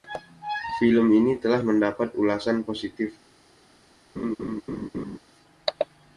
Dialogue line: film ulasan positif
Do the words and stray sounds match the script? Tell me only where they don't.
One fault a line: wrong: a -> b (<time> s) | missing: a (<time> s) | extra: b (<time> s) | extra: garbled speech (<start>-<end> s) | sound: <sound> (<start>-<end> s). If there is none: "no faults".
extra: ini telah mendapat (1.1 s)
sound: laugh (4.2-5.2 s)